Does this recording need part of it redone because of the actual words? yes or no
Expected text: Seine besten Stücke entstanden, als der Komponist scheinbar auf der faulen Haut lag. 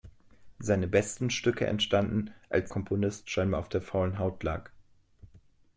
yes